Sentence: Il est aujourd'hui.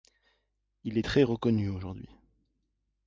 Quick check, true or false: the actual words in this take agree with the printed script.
false